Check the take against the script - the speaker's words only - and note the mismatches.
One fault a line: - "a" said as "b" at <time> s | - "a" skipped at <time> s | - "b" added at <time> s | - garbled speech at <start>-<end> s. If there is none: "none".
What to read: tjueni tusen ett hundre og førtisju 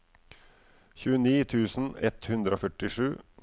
none